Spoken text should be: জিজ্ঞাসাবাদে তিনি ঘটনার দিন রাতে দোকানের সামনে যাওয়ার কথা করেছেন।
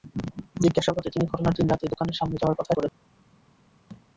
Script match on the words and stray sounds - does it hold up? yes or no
no